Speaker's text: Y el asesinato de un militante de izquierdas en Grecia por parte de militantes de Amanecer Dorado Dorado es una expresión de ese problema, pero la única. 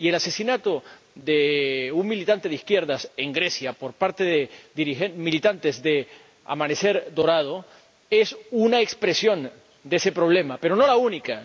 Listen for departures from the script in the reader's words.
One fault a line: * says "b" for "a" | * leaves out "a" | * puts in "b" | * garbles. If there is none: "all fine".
* leaves out "Dorado"
* puts in "no"